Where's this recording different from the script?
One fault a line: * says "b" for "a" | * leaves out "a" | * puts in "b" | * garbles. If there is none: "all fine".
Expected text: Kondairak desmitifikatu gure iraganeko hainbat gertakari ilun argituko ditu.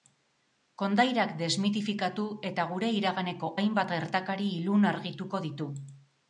* puts in "eta"